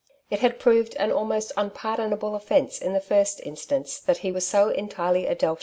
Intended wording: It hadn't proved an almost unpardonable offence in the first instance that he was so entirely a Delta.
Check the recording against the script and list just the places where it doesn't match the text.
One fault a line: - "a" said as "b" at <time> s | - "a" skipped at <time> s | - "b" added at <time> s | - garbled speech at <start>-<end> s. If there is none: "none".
- "hadn't" said as "had" at 0.4 s